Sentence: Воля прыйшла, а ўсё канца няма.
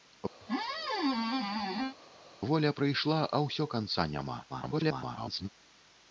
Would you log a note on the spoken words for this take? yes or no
yes